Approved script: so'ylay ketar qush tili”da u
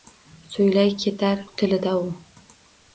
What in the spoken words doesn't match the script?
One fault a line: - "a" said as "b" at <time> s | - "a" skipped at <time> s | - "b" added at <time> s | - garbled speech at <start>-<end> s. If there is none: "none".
- "qush" skipped at 1.4 s